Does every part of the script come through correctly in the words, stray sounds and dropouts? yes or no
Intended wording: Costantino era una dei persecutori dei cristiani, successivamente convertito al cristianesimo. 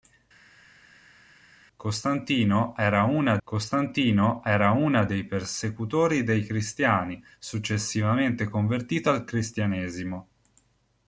no